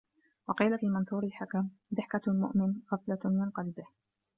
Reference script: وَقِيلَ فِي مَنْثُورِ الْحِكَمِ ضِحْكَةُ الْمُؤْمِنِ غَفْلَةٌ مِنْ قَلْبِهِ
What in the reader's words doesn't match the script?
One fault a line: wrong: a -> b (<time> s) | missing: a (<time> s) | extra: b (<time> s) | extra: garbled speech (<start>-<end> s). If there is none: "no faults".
no faults